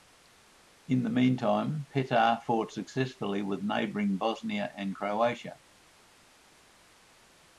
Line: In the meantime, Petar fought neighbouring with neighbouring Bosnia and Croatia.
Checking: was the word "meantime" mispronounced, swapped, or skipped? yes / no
no